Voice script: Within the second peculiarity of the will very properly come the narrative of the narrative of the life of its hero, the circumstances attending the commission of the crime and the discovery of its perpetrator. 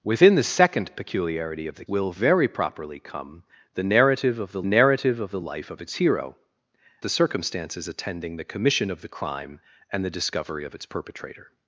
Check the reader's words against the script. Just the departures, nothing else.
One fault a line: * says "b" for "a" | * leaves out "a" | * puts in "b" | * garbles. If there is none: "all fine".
all fine